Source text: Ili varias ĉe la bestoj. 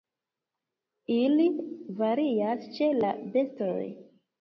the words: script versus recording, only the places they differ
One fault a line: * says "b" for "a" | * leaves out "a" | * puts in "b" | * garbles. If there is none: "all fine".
all fine